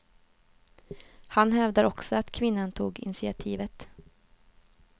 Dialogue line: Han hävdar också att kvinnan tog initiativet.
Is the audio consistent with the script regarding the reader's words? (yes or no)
yes